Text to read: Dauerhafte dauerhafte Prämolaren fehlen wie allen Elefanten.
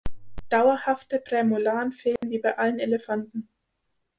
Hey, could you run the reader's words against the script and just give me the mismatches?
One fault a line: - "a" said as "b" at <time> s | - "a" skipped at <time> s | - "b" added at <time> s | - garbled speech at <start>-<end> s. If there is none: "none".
- "dauerhafte" skipped at 1.2 s
- "bei" added at 2.4 s